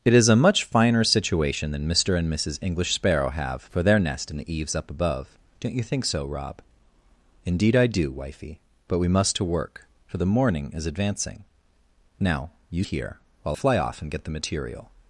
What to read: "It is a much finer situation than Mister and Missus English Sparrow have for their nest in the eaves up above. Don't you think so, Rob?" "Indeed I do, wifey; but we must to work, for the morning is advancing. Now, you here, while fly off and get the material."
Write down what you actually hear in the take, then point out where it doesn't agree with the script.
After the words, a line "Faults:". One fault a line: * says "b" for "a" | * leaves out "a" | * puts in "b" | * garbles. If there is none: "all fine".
"It is a much finer situation than Mister and Missus English Sparrow have for their nest in the eaves up above. Don't you think so, Rob?" "Indeed I do, wifey; but we must to work, for the morning is advancing. Now, you here, while fly off and get the material."
Faults:
all fine